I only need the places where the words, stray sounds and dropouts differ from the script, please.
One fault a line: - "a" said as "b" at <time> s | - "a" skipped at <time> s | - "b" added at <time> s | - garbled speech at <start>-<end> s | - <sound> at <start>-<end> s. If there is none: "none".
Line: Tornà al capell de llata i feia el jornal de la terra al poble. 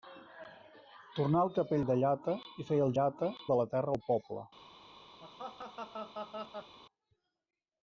- "jornal" said as "llata" at 2.9 s
- laugh at 5.2-6.8 s